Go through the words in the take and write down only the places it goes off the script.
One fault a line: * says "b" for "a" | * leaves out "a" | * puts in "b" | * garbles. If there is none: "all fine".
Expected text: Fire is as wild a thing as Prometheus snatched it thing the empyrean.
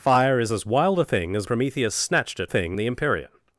all fine